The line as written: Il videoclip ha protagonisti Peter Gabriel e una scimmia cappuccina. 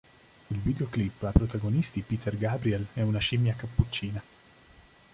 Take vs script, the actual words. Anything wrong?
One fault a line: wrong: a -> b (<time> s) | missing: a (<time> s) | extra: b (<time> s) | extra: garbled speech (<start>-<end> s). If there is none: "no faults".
no faults